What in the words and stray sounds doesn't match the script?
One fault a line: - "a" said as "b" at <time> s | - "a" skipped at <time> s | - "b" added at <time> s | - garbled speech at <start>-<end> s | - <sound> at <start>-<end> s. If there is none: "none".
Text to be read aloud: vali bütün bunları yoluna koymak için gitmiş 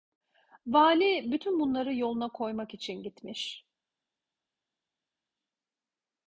none